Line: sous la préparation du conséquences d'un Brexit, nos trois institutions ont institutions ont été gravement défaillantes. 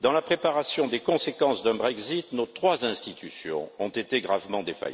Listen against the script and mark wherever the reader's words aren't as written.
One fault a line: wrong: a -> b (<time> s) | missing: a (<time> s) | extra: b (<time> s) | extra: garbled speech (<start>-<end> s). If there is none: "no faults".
wrong: sous -> dans (0.0 s)
wrong: du -> des (0.9 s)
missing: institutions ont (3.9 s)